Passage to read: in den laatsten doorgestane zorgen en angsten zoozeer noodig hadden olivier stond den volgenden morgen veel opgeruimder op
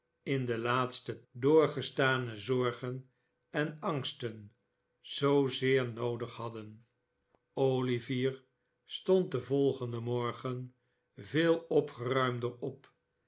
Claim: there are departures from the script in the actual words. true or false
false